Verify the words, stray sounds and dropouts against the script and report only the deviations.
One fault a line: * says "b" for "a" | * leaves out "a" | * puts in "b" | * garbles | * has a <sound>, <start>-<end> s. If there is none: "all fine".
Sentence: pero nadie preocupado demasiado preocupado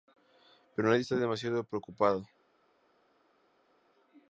* says "está" for "preocupado"